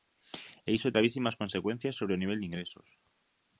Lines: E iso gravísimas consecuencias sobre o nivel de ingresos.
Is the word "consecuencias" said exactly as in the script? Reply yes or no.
yes